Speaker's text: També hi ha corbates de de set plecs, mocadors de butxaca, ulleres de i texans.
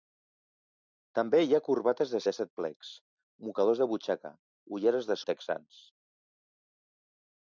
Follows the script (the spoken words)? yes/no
yes